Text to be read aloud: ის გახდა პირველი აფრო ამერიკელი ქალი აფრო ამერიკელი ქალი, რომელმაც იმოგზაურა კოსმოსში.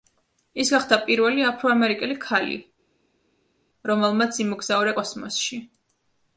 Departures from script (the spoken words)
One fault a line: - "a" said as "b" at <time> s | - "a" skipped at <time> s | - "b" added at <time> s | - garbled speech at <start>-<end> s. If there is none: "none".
- "აფრო ამერიკელი ქალი" skipped at 2.6 s